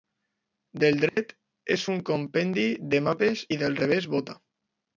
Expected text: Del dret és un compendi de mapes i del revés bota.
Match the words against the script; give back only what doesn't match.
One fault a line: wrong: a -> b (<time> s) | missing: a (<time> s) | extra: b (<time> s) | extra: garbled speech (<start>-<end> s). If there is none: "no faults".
no faults